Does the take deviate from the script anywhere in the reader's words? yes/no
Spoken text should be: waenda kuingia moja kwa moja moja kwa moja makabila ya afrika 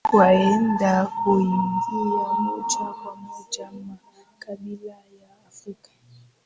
yes